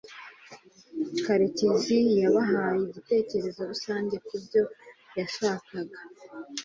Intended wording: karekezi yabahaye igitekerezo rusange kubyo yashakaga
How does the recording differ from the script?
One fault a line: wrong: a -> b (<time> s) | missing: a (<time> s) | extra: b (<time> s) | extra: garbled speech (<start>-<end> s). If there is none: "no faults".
no faults